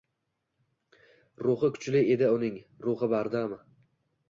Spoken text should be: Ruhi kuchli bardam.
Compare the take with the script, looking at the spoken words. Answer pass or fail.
fail